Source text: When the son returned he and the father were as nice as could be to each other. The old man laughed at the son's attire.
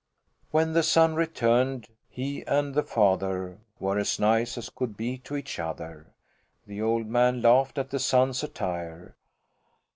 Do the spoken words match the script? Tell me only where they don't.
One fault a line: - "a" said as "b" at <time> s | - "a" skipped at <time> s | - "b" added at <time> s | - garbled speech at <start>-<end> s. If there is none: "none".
none